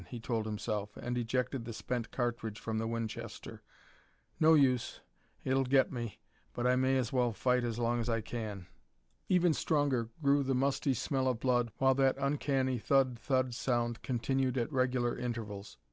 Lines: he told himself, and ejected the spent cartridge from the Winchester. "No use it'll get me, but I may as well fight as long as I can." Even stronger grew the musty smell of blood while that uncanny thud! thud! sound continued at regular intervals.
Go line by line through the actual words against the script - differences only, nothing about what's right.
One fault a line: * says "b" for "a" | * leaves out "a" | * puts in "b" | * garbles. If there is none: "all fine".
all fine